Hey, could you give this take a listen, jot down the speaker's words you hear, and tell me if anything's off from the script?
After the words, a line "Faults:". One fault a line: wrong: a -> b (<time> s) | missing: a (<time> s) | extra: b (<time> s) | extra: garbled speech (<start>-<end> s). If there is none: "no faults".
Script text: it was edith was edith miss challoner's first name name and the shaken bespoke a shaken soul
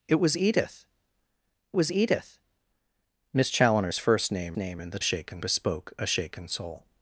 it was edith was edith miss challoner's first name name and the shaken bespoke a shaken soul
Faults:
no faults